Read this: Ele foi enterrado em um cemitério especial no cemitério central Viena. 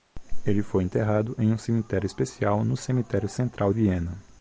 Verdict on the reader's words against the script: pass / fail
pass